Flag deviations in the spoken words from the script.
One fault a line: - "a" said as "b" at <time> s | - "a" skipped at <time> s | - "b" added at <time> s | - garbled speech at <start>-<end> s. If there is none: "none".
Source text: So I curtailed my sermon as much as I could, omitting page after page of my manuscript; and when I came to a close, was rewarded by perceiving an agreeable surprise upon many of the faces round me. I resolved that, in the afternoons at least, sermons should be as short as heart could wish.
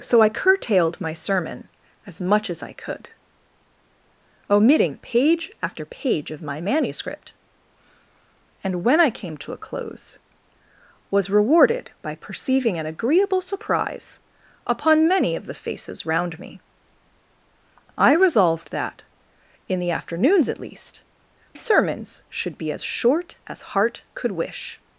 none